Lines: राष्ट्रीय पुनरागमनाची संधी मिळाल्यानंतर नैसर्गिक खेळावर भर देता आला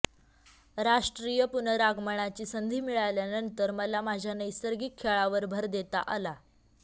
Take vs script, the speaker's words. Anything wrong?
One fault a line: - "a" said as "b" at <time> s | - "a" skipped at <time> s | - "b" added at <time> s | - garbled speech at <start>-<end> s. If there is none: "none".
- "मला माझ्या" added at 3.7 s